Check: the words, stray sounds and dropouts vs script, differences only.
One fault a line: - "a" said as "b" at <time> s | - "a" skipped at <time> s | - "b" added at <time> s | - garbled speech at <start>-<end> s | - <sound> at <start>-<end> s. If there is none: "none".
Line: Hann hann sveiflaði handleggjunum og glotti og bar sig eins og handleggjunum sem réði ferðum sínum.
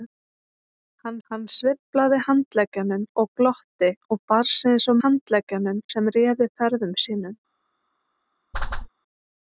- whoosh at 8.5-8.9 s